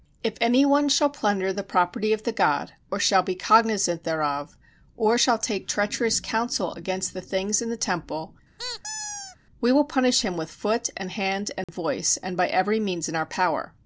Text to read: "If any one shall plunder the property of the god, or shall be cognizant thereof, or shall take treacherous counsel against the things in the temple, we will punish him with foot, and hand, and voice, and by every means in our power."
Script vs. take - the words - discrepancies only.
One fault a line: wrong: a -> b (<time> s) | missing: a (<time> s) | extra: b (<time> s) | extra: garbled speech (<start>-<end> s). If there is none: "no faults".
no faults